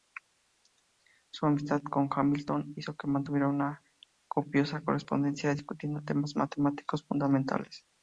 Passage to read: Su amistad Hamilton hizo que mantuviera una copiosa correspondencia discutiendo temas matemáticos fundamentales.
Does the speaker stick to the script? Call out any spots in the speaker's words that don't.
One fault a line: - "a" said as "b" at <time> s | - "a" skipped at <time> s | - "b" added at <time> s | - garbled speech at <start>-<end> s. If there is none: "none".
- "con" added at 1.8 s